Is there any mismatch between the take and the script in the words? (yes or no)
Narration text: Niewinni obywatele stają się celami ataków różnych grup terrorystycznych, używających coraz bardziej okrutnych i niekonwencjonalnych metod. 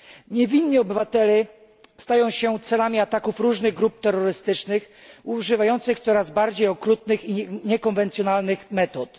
no